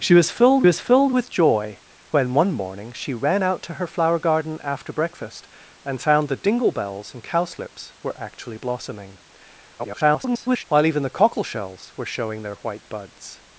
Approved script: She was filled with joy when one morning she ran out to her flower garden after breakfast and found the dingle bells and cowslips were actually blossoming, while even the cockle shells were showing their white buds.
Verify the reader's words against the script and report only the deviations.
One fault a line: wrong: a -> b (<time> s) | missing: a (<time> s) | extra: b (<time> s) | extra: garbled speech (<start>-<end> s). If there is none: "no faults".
extra: was filled (0.6 s)
extra: garbled speech (9.8-10.6 s)